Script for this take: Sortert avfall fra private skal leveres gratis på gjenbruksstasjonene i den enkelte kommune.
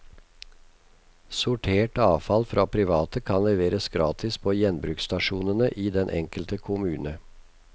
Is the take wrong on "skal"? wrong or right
wrong